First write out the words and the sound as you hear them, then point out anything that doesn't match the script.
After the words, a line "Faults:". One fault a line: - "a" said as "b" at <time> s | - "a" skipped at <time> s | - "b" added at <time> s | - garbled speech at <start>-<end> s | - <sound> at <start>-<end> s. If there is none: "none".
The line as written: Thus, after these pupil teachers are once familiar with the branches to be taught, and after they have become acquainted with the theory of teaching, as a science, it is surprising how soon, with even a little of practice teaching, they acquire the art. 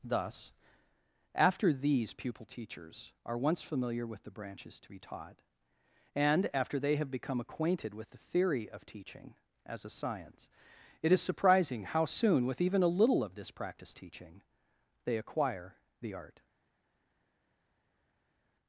Thus, after these pupil teachers are once familiar with the branches to be taught, and after they have become acquainted with the theory of teaching, as a science, it is surprising how soon, with even a little of this practice teaching, they acquire the art.
Faults:
- "this" added at 13.3 s